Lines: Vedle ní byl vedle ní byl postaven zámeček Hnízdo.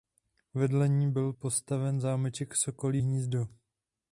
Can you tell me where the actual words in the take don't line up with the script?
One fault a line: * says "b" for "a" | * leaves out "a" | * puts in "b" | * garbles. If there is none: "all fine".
* leaves out "vedle ní byl"
* puts in "Sokolí"